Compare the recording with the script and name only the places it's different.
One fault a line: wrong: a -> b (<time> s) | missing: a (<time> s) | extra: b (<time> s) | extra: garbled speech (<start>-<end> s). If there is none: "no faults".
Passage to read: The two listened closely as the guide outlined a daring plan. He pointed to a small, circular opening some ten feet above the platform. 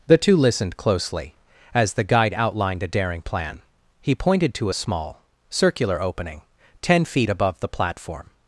missing: some (6.4 s)